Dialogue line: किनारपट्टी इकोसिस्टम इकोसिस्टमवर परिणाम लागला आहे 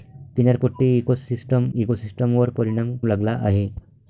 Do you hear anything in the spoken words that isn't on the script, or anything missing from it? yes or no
no